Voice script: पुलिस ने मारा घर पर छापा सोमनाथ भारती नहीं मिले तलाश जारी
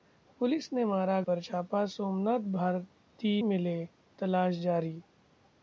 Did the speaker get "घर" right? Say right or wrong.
wrong